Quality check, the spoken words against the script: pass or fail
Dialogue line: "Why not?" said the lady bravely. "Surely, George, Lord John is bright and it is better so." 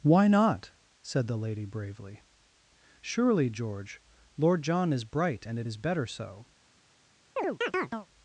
pass